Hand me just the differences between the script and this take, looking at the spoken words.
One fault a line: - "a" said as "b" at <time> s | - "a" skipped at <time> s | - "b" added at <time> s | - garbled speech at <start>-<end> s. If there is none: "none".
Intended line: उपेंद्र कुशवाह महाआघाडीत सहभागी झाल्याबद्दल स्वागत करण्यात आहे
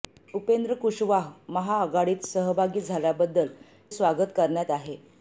none